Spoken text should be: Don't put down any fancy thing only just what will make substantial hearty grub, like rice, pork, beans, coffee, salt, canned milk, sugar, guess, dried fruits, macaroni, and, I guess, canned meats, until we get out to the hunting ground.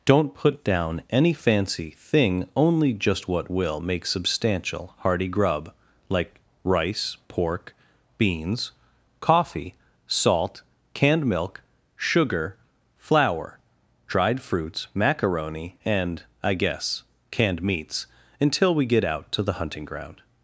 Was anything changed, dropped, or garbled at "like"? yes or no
no